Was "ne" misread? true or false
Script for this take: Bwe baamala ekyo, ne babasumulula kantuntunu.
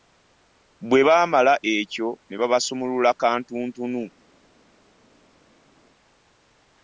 false